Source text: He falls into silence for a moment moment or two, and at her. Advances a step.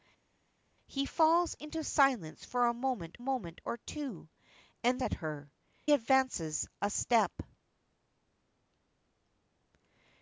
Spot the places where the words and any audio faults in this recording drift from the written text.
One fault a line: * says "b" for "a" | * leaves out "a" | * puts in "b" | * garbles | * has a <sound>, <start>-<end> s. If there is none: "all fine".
all fine